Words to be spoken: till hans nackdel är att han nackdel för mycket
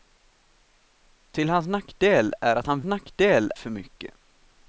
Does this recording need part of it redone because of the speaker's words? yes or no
no